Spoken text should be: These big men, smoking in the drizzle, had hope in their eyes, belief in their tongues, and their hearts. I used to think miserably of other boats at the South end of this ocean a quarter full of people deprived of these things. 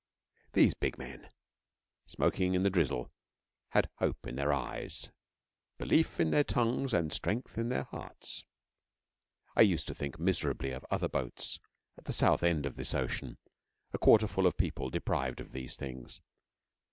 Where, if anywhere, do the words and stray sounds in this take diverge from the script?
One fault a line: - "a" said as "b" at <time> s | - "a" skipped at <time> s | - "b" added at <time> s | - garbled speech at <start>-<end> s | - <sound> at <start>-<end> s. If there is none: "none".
- "strength in" added at 7.1 s